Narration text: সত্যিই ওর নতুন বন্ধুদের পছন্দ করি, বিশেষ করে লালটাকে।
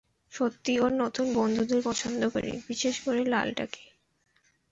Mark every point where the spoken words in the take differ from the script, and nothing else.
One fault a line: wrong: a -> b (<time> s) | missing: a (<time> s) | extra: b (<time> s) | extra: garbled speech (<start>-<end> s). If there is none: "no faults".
no faults